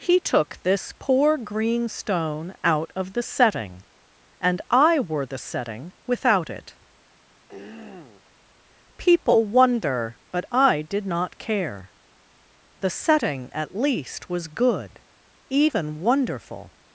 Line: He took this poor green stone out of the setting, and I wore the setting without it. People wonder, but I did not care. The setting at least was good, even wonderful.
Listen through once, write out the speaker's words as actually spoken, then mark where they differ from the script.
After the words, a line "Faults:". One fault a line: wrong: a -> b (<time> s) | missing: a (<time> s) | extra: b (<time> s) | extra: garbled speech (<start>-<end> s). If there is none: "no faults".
He took this poor green stone out of the setting, and I wore the setting without it. People wonder, but I did not care. The setting at least was good, even wonderful.
Faults:
no faults